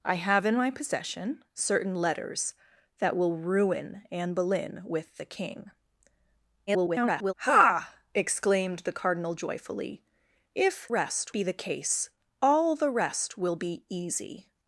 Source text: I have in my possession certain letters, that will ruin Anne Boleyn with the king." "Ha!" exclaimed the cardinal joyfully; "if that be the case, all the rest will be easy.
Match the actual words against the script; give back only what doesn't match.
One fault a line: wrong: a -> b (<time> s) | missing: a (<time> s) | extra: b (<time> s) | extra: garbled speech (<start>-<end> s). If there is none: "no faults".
extra: garbled speech (6.7-7.3 s)
wrong: that -> rest (10.9 s)